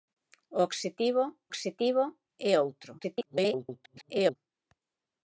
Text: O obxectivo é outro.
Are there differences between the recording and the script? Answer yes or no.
yes